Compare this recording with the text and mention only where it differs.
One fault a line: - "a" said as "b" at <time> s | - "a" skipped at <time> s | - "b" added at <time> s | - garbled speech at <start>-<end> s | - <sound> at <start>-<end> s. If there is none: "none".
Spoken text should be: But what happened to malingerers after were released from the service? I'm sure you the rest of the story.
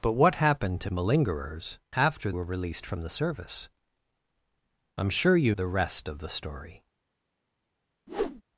- whoosh at 8.1-8.4 s